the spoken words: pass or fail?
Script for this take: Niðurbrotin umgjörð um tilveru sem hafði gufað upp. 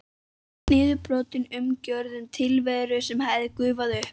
pass